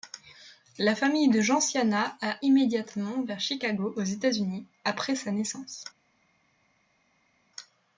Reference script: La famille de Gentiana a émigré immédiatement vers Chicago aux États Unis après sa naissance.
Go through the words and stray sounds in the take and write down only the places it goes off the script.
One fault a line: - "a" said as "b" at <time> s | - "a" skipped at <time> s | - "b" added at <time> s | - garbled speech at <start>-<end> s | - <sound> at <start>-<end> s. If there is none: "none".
- "émigré" skipped at 2.4 s